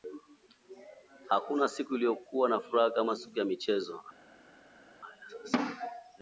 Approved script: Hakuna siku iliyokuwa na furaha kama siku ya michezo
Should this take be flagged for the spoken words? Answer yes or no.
no